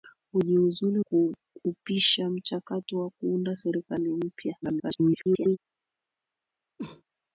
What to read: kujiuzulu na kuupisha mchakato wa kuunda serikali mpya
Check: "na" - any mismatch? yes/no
yes